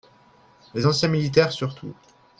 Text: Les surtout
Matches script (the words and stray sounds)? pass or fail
fail